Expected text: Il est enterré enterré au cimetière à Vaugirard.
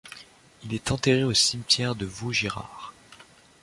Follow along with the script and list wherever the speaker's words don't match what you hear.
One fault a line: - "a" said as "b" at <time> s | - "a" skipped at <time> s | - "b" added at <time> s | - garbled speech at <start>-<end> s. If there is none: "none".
- "enterré" skipped at 1.2 s
- "à" said as "de" at 1.9 s